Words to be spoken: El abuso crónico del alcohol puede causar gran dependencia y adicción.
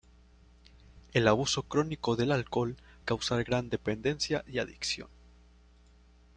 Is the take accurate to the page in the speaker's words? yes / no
no